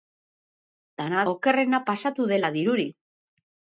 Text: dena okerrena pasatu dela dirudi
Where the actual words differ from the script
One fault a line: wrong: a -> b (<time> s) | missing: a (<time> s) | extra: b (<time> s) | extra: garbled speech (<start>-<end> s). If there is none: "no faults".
no faults